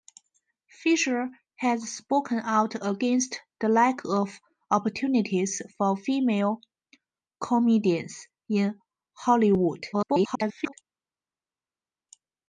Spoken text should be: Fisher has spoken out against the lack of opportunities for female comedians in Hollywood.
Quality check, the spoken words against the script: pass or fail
fail